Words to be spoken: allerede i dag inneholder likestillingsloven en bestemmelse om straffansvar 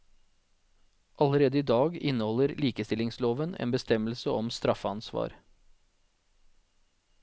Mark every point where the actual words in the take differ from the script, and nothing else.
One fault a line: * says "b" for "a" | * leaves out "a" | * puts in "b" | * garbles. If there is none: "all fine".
all fine